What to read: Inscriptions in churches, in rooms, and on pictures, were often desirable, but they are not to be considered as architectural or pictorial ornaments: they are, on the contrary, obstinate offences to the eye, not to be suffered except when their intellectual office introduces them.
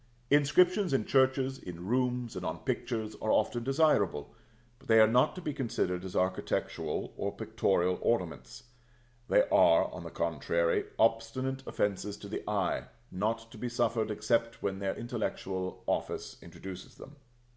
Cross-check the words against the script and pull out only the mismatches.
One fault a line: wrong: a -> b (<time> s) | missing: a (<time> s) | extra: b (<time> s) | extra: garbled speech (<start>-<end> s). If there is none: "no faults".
wrong: were -> are (3.2 s)